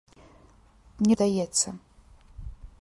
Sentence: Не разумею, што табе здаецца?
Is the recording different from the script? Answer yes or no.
yes